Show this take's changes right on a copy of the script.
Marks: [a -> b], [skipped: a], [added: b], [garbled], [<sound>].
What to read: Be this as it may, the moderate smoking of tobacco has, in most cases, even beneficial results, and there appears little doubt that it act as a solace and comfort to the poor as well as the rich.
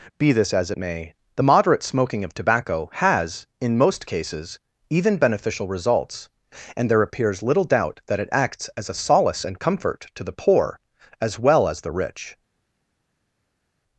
Be this as it may, the moderate smoking of tobacco has, in most cases, even beneficial results, and there appears little doubt that it [act -> acts] as a solace and comfort to the poor as well as the rich.